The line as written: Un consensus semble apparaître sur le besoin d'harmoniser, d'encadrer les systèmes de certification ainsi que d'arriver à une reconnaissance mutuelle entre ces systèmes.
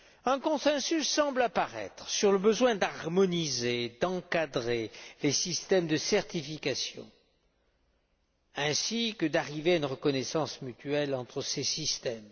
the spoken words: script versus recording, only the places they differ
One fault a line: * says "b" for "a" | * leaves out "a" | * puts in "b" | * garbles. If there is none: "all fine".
all fine